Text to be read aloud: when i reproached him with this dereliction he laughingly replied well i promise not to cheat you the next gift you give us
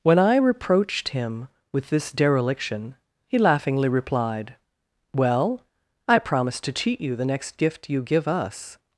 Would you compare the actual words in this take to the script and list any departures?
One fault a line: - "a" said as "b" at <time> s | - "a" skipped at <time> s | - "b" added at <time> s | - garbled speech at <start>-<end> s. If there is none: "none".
- "not" skipped at 6.6 s